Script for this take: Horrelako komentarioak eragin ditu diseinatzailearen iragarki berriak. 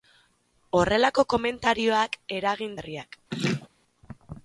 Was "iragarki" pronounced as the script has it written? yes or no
no